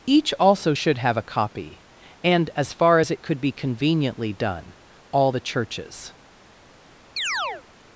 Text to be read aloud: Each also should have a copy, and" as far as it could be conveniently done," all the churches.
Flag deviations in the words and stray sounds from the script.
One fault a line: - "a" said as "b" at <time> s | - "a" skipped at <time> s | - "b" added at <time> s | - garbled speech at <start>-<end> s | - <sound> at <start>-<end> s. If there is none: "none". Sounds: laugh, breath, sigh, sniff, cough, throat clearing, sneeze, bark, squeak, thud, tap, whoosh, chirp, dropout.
- chirp at 7.2-7.6 s